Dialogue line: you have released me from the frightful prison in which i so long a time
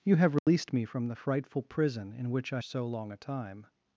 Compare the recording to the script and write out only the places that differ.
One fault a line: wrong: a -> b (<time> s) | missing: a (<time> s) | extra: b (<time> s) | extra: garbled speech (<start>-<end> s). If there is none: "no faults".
no faults